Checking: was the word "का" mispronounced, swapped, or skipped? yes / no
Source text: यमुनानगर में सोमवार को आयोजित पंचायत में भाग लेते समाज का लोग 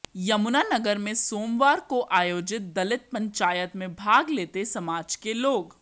yes